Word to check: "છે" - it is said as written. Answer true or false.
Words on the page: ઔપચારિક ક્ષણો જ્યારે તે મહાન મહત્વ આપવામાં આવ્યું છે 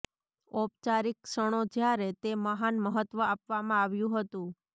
false